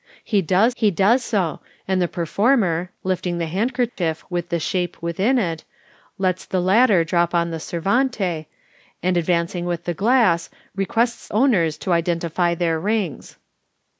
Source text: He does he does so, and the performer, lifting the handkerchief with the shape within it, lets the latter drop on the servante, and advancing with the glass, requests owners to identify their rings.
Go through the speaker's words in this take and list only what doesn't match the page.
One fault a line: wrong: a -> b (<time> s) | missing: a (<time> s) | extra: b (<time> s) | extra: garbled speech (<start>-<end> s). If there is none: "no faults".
no faults